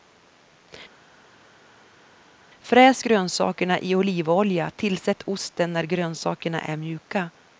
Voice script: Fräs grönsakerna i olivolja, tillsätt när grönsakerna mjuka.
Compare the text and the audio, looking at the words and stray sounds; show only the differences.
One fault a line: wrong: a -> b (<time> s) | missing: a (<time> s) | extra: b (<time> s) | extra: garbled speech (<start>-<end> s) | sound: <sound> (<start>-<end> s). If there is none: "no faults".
extra: osten (5.2 s)
extra: är (6.6 s)